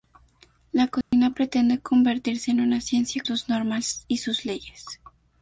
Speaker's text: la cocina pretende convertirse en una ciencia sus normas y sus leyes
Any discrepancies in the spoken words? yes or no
no